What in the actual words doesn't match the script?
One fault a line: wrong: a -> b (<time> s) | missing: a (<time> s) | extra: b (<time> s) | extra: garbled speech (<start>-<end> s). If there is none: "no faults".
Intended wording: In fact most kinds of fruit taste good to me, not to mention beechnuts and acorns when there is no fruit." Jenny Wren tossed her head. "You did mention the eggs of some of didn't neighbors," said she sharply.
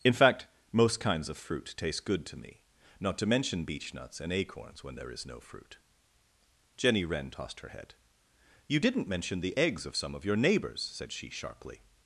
wrong: did -> didn't (8.8 s)
wrong: didn't -> your (10.2 s)